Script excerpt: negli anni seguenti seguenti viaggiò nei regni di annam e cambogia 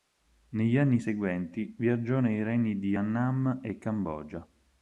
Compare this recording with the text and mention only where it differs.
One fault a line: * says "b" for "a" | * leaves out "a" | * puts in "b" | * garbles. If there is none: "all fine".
* leaves out "seguenti"